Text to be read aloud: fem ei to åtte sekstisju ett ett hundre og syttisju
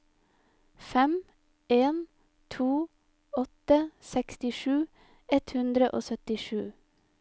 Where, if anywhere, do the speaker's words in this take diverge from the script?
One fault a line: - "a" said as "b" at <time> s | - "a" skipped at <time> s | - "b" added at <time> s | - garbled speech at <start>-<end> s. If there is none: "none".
- "ei" said as "en" at 1.7 s
- "ett" skipped at 5.5 s